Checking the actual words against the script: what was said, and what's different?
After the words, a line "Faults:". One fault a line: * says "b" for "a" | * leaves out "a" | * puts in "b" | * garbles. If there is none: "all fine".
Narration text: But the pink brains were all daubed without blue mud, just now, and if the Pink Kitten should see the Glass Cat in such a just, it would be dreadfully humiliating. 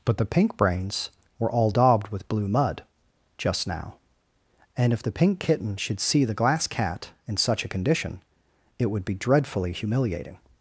But the pink brains were all daubed with blue mud, just now, and if the Pink Kitten should see the Glass Cat in such a condition, it would be dreadfully humiliating.
Faults:
* says "with" for "without"
* says "condition" for "just"